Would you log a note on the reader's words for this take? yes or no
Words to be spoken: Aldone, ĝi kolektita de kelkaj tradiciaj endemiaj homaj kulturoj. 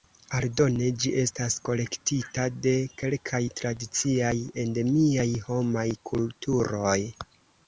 yes